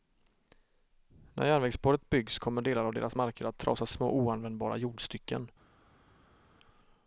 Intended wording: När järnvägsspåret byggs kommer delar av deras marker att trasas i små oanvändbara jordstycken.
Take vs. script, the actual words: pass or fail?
pass